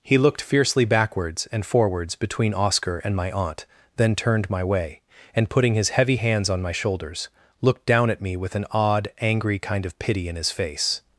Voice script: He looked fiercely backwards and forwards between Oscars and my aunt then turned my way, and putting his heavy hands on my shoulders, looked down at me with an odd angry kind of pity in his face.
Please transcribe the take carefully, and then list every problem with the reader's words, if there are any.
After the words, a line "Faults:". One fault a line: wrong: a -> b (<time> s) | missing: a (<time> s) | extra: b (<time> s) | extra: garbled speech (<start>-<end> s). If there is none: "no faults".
He looked fiercely backwards and forwards between Oscar and my aunt then turned my way, and putting his heavy hands on my shoulders, looked down at me with an odd angry kind of pity in his face.
Faults:
wrong: Oscars -> Oscar (2.5 s)